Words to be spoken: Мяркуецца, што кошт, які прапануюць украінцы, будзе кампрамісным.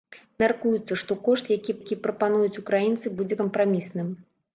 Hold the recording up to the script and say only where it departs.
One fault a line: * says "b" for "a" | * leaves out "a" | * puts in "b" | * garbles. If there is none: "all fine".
* puts in "які"